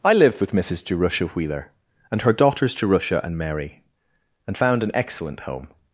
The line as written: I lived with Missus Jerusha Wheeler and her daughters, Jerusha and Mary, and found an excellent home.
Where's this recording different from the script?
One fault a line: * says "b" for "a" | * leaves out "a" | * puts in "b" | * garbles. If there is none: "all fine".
all fine